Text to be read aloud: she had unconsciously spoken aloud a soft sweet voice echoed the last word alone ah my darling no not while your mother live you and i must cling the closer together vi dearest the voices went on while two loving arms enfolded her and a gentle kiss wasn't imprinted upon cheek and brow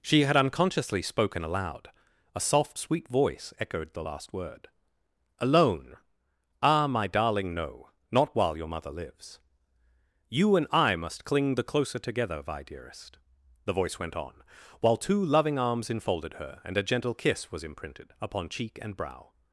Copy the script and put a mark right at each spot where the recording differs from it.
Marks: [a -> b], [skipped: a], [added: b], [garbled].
she had unconsciously spoken aloud a soft sweet voice echoed the last word alone ah my darling no not while your mother [live -> lives] you and i must cling the closer together vi dearest the [voices -> voice] went on while two loving arms enfolded her and a gentle kiss [wasn't -> was] imprinted upon cheek and brow